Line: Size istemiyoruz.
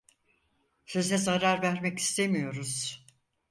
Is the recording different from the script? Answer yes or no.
yes